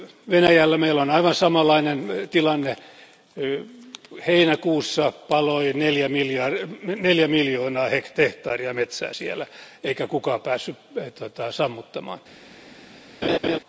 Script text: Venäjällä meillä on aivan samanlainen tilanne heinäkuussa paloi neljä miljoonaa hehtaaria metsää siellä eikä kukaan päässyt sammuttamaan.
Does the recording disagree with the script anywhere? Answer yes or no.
no